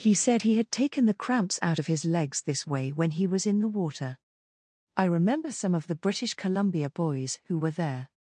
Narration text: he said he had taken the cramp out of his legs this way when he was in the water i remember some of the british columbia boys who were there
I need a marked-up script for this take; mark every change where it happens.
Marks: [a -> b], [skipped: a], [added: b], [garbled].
he said he had taken the [cramp -> cramps] out of his legs this way when he was in the water i remember some of the british columbia boys who were there